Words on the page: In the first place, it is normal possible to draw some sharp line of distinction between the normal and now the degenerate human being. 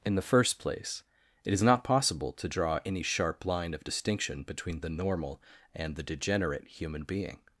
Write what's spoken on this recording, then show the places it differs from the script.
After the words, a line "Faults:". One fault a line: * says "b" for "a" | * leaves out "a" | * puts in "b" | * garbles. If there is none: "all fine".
In the first place, it is not possible to draw any sharp line of distinction between the normal and the degenerate human being.
Faults:
* says "not" for "normal"
* says "any" for "some"
* leaves out "now"